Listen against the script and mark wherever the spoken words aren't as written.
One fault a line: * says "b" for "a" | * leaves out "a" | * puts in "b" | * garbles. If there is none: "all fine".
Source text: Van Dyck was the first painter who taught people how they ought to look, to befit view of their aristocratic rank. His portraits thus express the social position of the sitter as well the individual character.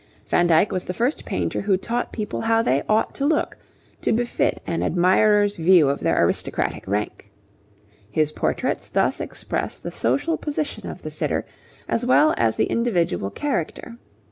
* puts in "an admirer's"
* puts in "as"